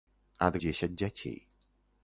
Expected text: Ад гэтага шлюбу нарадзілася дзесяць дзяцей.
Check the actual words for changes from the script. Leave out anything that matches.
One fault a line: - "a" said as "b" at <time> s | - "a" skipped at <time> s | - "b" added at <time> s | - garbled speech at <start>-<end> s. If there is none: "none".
- "гэтага шлюбу нарадзілася" skipped at 0.6 s